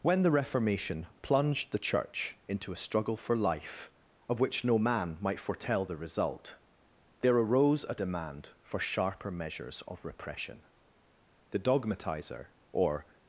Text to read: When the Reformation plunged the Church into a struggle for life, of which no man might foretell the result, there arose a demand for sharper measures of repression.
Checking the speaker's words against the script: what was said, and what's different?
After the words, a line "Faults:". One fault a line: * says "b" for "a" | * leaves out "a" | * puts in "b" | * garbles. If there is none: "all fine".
When the Reformation plunged the Church into a struggle for life, of which no man might foretell the result, there arose a demand for sharper measures of repression. The dogmatizer or
Faults:
* puts in "The dogmatizer or"